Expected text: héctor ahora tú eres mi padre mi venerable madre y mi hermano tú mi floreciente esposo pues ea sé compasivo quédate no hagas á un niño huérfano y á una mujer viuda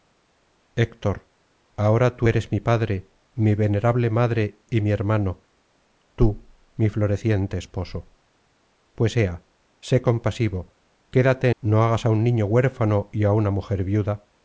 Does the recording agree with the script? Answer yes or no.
yes